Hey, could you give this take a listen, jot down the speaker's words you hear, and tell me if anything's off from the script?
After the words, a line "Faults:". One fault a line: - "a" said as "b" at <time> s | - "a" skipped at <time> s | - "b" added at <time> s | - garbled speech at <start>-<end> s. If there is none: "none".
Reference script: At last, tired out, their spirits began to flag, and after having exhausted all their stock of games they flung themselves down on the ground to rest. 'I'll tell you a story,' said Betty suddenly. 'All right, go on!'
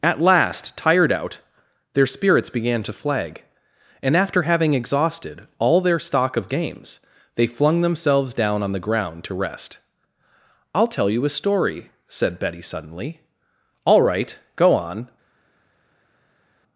At last, tired out, their spirits began to flag, and after having exhausted all their stock of games they flung themselves down on the ground to rest. 'I'll tell you a story,' said Betty suddenly. 'All right, go on!'
Faults:
none